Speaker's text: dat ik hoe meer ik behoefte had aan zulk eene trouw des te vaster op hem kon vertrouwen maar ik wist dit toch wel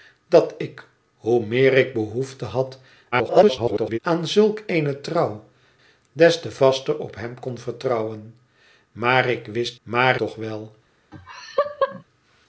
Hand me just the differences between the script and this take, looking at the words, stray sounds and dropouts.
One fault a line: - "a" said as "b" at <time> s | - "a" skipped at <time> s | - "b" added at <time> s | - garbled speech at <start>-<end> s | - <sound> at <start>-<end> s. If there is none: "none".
- garbled speech at 3.1-4.0 s
- "dit" said as "maar" at 9.8 s
- laugh at 11.1-12.0 s